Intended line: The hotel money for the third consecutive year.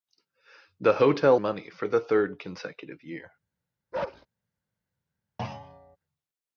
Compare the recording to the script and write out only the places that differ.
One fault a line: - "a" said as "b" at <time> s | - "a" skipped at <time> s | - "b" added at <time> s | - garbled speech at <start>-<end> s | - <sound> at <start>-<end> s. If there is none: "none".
- bark at 3.9-4.3 s
- thud at 5.4-6.0 s